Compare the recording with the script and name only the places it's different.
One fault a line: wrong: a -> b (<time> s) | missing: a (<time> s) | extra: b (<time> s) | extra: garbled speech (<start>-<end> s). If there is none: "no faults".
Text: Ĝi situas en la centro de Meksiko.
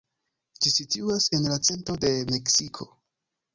no faults